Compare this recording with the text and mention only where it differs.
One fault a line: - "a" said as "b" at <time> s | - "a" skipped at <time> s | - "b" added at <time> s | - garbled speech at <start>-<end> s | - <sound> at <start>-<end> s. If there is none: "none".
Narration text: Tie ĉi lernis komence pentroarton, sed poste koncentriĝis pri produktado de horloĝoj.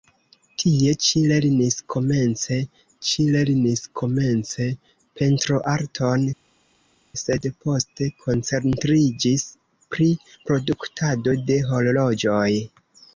- "ĉi lernis komence" added at 3.1 s